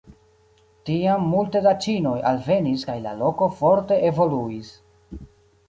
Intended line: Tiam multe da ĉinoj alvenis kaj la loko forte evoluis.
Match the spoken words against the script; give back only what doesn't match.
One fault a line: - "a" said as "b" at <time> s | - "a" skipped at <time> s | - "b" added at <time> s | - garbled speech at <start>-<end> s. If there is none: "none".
none